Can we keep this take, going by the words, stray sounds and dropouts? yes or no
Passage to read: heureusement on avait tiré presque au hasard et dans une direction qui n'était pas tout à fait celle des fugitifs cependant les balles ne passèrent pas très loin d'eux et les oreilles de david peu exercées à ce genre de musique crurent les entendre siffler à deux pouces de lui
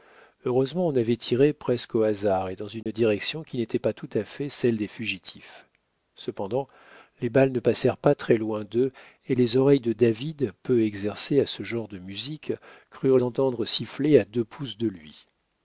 no